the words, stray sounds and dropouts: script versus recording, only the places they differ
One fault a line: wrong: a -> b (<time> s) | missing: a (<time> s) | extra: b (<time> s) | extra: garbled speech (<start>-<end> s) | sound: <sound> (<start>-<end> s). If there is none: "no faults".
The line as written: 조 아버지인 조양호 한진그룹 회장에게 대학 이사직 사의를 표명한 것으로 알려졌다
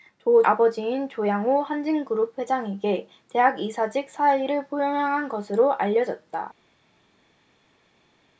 no faults